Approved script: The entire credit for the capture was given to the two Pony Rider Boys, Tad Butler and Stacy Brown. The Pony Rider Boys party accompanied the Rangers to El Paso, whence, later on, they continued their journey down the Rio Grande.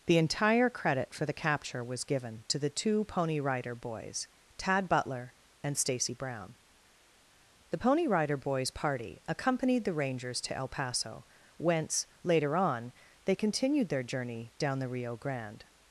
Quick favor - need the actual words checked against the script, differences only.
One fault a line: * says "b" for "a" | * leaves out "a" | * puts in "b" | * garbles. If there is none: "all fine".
all fine